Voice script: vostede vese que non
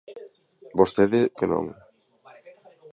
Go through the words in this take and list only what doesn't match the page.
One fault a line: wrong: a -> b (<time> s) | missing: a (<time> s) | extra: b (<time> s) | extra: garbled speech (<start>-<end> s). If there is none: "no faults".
missing: vese (1.2 s)